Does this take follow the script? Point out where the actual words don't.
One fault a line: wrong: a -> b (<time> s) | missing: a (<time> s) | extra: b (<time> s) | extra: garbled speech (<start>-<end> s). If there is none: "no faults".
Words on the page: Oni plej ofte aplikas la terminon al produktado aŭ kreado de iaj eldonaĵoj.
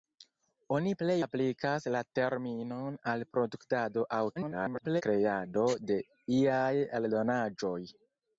missing: ofte (1.2 s)
extra: garbled speech (4.4-5.0 s)